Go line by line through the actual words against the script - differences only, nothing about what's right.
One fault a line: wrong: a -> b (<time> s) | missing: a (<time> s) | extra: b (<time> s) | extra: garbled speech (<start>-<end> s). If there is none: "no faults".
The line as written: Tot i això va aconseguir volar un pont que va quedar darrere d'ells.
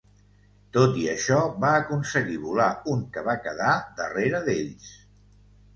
missing: pont (3.0 s)